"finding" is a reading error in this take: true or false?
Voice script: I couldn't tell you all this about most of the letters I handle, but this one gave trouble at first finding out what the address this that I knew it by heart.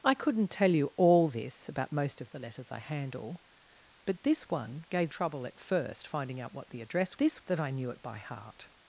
false